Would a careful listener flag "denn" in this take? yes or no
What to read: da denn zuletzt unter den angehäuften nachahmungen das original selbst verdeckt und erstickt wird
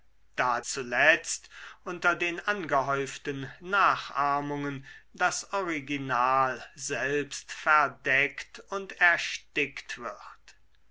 yes